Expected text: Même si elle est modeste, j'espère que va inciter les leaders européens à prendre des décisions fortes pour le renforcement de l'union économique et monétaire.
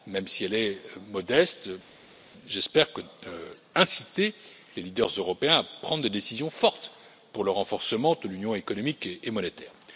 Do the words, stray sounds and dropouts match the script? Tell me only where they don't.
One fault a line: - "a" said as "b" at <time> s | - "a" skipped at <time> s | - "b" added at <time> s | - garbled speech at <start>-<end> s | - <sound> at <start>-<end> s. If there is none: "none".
none